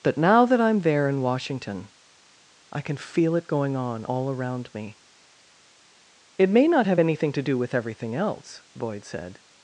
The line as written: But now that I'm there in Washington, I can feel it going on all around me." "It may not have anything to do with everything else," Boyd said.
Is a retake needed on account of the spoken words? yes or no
no